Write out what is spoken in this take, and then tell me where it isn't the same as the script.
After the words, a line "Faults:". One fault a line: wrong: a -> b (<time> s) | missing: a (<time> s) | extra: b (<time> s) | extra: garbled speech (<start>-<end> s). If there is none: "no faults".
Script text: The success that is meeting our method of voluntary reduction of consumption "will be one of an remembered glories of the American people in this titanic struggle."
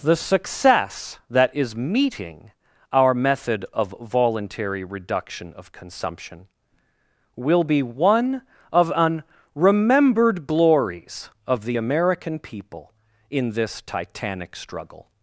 The success that is meeting our method of voluntary reduction of consumption "will be one of an remembered glories of the American people in this titanic struggle."
Faults:
no faults